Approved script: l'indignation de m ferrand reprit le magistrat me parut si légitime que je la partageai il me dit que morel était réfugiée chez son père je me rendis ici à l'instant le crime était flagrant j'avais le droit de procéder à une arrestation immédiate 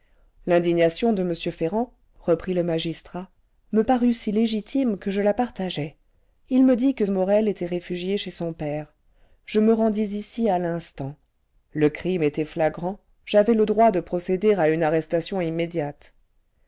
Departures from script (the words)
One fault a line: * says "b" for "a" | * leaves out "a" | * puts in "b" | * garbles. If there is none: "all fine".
all fine